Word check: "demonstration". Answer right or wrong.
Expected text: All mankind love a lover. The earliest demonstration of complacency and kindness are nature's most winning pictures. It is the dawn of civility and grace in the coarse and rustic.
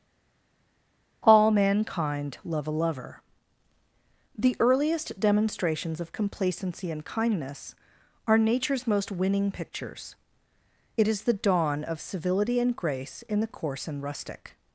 wrong